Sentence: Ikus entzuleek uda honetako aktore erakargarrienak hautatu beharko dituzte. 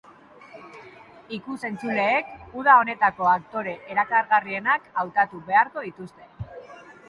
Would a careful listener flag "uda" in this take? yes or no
no